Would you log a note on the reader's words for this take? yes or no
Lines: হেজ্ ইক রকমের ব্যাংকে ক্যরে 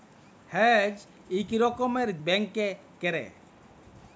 no